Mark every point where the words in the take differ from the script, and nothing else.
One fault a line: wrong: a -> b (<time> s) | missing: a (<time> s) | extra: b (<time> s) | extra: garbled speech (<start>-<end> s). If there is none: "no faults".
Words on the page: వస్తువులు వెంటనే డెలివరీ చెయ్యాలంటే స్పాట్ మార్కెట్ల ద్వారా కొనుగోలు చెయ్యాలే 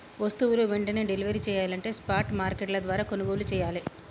no faults